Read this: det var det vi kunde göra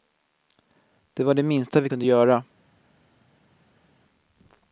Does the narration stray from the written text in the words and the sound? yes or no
yes